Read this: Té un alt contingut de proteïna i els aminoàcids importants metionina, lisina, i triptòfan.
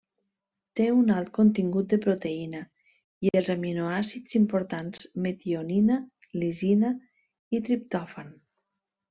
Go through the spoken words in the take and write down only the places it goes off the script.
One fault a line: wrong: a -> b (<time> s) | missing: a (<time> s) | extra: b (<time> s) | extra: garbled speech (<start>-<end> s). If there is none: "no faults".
no faults